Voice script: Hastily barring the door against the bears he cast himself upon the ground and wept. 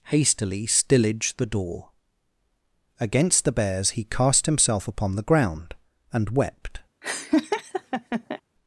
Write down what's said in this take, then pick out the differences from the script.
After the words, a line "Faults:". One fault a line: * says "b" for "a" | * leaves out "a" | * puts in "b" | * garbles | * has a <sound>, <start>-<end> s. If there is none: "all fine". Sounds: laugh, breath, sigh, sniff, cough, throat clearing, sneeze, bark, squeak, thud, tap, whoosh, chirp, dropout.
Hastily stillage the door against the bears he cast himself upon the ground and wept.
Faults:
* says "stillage" for "barring"
* has a laugh, 7.0-8.4 s